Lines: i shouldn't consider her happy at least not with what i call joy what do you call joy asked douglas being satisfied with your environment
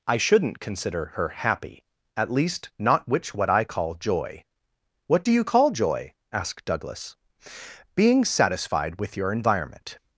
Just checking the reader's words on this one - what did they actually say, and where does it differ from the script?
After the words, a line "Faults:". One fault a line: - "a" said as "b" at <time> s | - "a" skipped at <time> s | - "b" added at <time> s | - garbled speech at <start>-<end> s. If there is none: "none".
i shouldn't consider her happy at least not which what i call joy what do you call joy asked douglas being satisfied with your environment
Faults:
- "with" said as "which" at 3.1 s